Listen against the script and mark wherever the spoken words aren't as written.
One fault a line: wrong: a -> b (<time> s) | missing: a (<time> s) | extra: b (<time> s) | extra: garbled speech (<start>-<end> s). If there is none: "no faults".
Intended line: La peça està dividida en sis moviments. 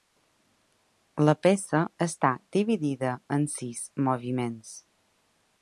no faults